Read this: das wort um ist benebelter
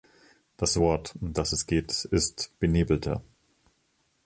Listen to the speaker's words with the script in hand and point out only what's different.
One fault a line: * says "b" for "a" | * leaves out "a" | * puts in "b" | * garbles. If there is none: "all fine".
* puts in "das es geht"